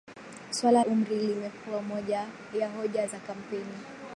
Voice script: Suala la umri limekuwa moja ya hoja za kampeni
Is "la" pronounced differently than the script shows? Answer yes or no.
yes